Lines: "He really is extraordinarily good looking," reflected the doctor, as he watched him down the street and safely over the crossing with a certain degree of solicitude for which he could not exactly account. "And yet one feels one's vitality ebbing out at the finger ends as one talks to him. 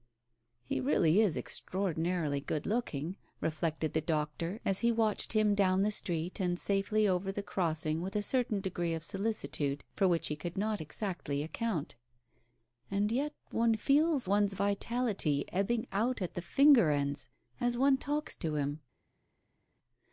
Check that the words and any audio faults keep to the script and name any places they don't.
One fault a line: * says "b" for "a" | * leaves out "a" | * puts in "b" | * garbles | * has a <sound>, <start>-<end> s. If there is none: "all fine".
all fine